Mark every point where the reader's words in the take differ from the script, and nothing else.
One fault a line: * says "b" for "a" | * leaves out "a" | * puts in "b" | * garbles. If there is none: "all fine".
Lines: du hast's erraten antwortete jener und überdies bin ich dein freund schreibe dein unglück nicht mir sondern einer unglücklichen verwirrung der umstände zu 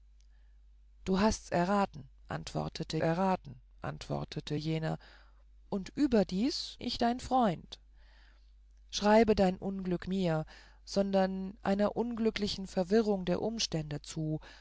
* puts in "erraten antwortete"
* leaves out "bin"
* leaves out "nicht"